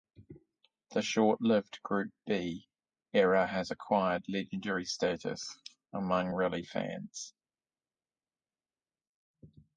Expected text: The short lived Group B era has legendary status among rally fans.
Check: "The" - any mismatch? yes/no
no